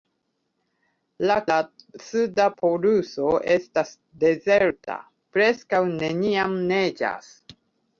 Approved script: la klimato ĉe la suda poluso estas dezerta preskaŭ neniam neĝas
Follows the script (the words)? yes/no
no